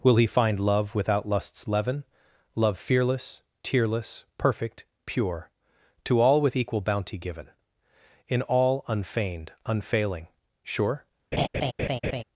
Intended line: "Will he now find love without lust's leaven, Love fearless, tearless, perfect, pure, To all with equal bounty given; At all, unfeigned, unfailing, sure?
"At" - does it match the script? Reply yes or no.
no